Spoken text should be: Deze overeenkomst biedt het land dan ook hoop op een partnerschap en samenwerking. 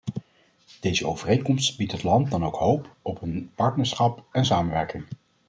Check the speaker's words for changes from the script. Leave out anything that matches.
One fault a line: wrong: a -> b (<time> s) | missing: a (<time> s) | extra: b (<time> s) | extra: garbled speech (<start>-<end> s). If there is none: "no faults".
no faults